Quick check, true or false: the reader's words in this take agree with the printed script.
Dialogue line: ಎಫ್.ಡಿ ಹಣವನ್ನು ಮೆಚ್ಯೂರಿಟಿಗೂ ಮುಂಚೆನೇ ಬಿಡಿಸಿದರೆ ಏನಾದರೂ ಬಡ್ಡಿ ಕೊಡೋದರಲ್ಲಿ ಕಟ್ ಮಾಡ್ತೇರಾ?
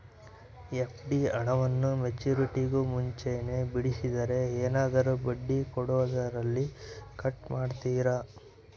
true